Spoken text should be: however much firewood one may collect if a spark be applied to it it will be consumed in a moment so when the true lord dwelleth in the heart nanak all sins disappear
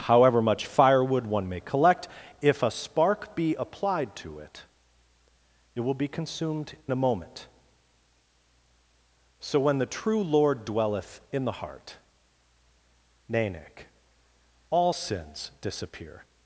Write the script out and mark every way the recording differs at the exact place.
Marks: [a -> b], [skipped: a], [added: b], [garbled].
however much firewood one may collect if a spark be applied to it it will be consumed [skipped: in] a moment so when the true lord dwelleth in the heart nanak all sins disappear